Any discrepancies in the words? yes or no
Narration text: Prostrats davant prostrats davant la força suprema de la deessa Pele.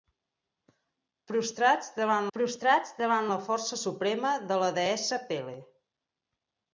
no